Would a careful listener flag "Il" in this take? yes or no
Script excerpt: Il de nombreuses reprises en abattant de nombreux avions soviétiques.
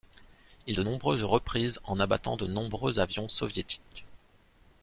no